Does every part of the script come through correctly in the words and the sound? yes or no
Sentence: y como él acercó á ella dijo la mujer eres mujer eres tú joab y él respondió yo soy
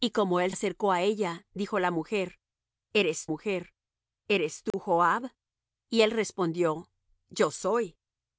no